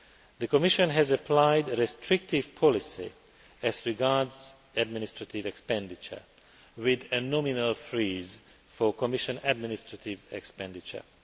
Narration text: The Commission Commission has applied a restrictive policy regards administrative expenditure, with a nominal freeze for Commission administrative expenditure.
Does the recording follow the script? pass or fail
fail